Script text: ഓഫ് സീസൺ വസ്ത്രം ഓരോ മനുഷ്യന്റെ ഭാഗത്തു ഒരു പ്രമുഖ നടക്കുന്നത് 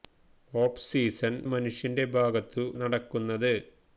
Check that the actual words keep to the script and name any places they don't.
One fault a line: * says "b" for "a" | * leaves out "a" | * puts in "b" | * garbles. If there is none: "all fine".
* leaves out "വസ്ത്രം ഓരോ"
* leaves out "ഒരു പ്രമുഖ"